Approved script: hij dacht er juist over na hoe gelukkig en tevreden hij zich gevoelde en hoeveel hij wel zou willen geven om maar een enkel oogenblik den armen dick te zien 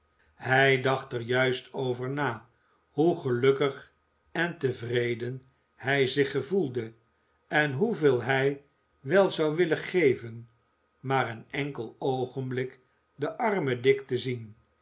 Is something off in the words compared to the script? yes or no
yes